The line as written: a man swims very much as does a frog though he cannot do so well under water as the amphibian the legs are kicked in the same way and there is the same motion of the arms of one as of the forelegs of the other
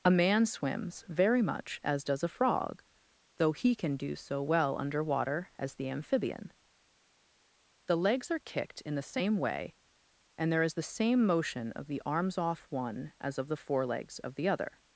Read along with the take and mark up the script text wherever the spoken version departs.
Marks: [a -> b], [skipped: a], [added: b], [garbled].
a man swims very much as does a frog though he [cannot -> can] do so well under water as the amphibian the legs are kicked in the same way and there is the same motion of the arms [of -> off] one as of the forelegs of the other